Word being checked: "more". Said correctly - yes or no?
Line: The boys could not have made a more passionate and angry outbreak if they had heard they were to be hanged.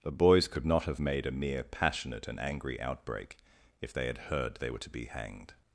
no